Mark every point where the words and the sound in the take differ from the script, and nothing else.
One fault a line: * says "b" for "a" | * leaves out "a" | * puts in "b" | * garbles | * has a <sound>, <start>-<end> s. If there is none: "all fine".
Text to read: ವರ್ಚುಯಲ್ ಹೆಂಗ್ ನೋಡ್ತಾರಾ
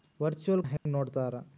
* has a dropout, 0.8-0.9 s